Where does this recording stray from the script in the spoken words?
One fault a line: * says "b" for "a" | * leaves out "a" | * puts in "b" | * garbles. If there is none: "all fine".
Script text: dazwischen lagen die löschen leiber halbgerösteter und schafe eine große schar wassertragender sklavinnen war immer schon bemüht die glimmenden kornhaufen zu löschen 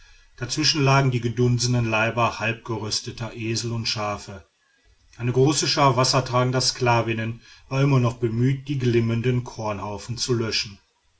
* says "gedunsenen" for "löschen"
* puts in "esel"
* says "noch" for "schon"